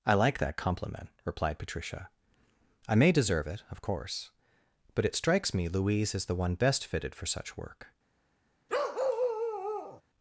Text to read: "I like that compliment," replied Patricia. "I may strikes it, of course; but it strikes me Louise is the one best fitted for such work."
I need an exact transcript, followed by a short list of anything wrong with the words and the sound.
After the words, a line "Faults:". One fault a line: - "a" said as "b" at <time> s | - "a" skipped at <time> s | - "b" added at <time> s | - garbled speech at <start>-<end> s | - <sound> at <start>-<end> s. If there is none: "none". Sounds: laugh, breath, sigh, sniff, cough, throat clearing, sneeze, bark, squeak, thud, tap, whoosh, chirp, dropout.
"I like that compliment," replied Patricia. "I may deserve it, of course; but it strikes me Louise is the one best fitted for such work."
Faults:
- "strikes" said as "deserve" at 3.1 s
- bark at 8.7-10.0 s